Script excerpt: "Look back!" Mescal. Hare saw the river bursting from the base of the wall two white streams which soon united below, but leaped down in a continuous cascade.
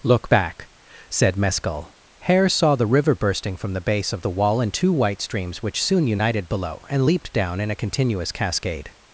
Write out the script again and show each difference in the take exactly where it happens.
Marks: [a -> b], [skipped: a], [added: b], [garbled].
"Look back!" [added: said] Mescal. Hare saw the river bursting from the base of the wall [added: in] two white streams which soon united below, [but -> and] leaped down in a continuous cascade.